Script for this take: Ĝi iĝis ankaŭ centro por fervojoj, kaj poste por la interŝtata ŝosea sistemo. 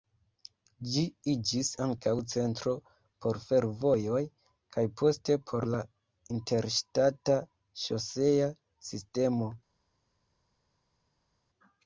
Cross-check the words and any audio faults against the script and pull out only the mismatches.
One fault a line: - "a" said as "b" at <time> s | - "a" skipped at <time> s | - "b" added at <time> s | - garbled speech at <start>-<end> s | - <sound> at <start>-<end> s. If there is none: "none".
none